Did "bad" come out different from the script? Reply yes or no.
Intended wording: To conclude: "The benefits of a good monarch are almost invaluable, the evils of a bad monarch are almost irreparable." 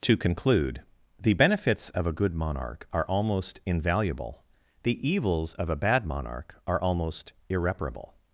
no